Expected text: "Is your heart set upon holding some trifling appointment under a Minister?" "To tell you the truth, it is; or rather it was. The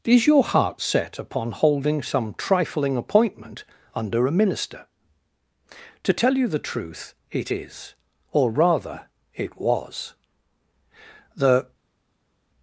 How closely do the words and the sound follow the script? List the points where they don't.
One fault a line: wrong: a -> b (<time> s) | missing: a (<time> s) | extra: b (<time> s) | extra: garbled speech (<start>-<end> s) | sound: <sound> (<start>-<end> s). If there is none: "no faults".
no faults